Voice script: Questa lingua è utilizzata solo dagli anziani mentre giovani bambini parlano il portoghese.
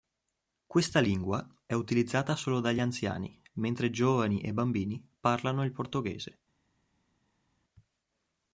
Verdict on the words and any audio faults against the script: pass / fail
fail